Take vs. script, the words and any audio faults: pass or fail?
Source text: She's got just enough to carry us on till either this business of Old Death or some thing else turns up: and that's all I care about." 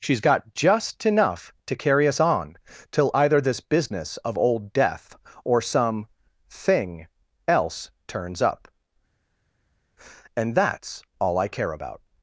pass